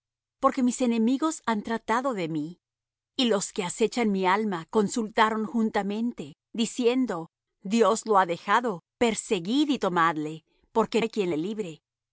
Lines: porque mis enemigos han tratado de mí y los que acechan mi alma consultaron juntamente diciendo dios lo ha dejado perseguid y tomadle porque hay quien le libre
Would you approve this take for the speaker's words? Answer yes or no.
yes